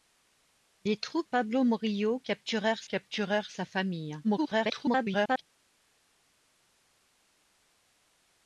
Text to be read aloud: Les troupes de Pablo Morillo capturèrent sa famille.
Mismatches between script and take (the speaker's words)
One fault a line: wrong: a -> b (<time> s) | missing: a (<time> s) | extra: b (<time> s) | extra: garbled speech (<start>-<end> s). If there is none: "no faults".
missing: de (1.3 s)
extra: capturèrent (2.8 s)
extra: garbled speech (4.2-5.4 s)